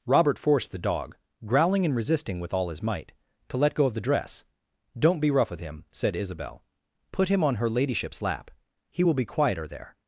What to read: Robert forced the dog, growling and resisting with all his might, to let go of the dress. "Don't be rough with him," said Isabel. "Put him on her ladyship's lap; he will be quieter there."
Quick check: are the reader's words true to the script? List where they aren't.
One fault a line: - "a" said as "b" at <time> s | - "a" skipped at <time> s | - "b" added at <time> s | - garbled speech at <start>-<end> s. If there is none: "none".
none